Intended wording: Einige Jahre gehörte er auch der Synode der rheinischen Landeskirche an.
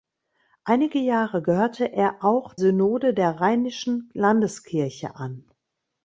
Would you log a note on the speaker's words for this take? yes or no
yes